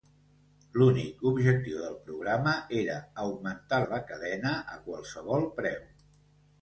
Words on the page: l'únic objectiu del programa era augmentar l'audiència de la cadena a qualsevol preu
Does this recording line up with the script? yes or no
no